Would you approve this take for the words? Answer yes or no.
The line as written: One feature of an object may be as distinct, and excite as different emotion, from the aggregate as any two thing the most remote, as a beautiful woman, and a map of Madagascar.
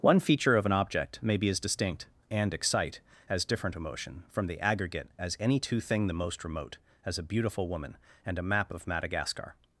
yes